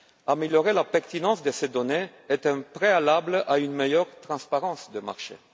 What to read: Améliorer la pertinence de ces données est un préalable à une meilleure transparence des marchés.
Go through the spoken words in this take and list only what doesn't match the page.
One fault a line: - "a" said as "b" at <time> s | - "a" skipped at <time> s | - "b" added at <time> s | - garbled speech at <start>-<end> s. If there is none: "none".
none